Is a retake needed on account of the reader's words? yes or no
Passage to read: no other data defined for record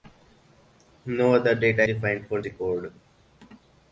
no